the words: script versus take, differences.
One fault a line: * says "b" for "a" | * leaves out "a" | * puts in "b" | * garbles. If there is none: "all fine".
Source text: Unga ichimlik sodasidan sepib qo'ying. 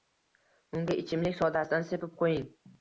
all fine